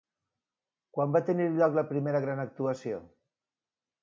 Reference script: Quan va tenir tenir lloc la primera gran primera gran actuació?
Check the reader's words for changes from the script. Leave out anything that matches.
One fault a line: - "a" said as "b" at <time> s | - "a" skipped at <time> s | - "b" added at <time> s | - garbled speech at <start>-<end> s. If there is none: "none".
- "tenir" skipped at 1.5 s
- "primera gran" skipped at 2.4 s